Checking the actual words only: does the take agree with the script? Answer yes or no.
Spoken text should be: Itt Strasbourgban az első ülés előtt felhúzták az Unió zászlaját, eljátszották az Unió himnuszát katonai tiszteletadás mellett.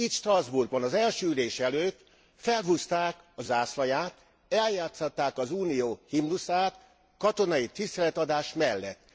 no